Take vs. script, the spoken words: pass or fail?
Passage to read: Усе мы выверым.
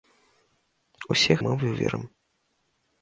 pass